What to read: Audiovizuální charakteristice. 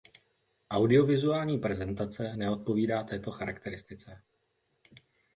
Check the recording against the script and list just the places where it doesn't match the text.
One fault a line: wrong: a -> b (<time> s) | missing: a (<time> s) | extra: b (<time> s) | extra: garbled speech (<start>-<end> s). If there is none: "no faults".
extra: prezentace neodpovídá této (1.6 s)